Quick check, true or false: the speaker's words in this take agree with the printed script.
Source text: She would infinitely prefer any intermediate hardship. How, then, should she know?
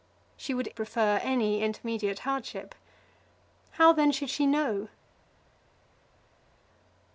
false